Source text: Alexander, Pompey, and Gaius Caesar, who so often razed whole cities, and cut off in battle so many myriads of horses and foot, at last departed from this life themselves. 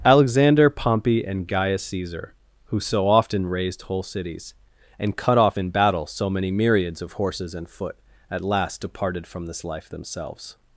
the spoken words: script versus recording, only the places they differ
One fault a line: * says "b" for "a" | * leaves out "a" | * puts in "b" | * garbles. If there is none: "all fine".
all fine